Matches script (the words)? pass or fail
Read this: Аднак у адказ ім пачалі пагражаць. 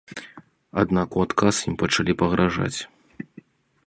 pass